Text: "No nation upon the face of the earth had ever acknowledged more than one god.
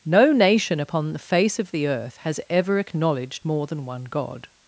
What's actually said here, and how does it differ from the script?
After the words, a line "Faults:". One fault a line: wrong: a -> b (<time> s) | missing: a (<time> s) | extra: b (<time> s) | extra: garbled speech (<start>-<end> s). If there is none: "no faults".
"No nation upon the face of the earth has ever acknowledged more than one god.
Faults:
wrong: had -> has (2.2 s)